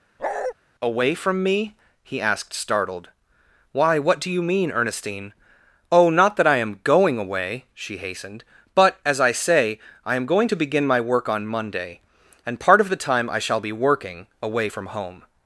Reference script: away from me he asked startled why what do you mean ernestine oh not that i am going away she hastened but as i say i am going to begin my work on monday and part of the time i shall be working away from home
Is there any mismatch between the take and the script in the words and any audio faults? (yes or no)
yes